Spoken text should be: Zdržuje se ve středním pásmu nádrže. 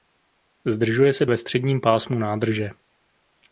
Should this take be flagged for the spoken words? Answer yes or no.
no